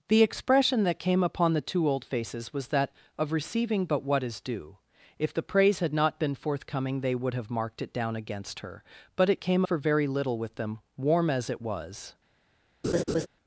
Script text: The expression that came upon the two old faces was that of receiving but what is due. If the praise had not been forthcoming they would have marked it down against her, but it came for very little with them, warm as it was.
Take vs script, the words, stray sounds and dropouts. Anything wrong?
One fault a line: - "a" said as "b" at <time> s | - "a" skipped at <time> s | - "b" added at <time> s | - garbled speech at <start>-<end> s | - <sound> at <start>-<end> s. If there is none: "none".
- laugh at 12.8-13.3 s